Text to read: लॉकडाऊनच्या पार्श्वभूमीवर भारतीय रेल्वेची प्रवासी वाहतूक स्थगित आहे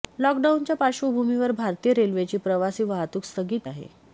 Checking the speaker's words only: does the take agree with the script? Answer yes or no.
yes